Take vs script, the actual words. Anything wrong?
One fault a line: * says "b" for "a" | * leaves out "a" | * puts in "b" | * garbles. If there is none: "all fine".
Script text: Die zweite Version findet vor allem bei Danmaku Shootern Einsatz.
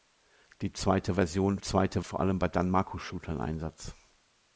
* says "zweite" for "findet"